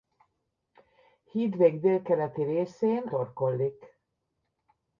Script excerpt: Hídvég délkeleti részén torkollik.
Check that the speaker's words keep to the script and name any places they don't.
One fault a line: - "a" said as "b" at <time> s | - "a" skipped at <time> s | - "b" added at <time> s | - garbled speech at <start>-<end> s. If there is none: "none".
none